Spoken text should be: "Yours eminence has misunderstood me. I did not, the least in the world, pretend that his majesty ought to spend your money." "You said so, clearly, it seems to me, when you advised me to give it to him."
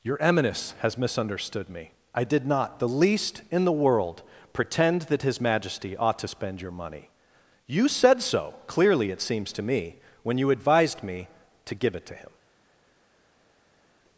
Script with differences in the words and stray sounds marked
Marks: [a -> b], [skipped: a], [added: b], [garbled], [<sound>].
["Yours -> Your] eminence has misunderstood me. I did not, the least in the world, pretend that his majesty ought to spend your money." "You said so, clearly, it seems to me, when you advised me to give it to him."